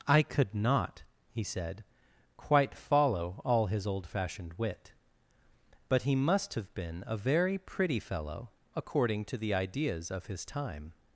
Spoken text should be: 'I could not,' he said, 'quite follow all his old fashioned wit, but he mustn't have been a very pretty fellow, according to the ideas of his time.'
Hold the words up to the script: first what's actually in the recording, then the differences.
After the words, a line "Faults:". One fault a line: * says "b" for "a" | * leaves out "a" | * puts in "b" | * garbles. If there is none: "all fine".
'I could not,' he said, 'quite follow all his old fashioned wit, but he must have been a very pretty fellow, according to the ideas of his time.'
Faults:
* says "must" for "mustn't"